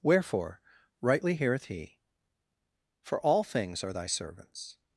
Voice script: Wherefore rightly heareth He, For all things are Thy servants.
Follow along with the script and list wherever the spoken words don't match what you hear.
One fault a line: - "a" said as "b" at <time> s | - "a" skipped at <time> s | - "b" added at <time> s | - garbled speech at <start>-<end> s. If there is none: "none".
none